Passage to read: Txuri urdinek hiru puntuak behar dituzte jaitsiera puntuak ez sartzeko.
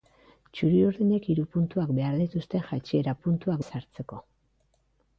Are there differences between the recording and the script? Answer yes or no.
no